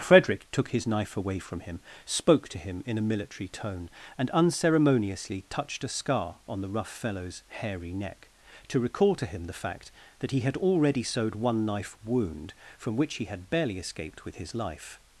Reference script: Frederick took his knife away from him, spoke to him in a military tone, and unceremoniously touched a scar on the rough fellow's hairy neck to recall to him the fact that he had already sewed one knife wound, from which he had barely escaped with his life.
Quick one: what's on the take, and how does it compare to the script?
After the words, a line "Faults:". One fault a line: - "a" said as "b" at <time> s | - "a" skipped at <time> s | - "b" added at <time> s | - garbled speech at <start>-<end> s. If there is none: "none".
Frederick took his knife away from him, spoke to him in a military tone, and unceremoniously touched a scar on the rough fellow's hairy neck to recall to him the fact that he had already sewed one knife wound, from which he had barely escaped with his life.
Faults:
none